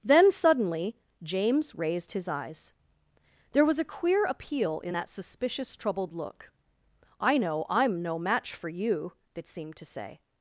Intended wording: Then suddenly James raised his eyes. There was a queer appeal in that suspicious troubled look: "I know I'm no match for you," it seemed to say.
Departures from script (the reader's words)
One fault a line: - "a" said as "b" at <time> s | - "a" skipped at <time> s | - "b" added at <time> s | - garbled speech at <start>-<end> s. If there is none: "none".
none